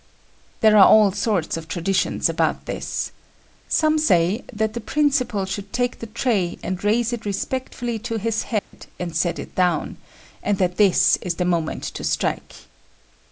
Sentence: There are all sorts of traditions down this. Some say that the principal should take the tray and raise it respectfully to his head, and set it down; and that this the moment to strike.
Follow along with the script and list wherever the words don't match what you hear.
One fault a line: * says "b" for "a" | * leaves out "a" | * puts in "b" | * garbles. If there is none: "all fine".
* says "about" for "down"
* puts in "is"